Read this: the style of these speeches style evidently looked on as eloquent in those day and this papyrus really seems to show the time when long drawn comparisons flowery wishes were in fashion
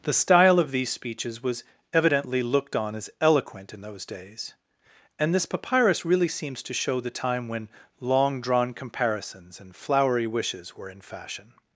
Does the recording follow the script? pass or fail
fail